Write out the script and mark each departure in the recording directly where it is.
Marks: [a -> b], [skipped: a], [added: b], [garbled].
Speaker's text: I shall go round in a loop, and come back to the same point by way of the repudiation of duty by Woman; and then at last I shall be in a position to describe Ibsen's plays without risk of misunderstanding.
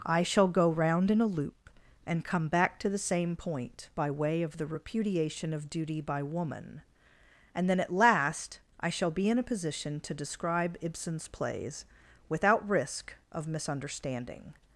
I shall go round in a loop, and come back to the same point by way of the repudiation of duty by Woman; and then at last I shall be in a position to describe Ibsen's plays without risk of misunderstanding.